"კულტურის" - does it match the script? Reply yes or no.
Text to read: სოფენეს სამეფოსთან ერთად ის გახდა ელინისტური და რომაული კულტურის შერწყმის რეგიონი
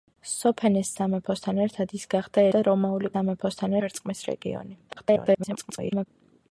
no